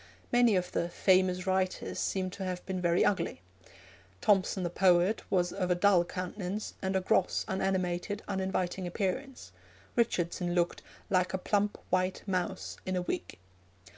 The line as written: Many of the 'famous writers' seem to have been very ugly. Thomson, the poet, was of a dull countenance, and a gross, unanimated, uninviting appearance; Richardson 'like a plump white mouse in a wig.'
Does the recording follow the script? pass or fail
fail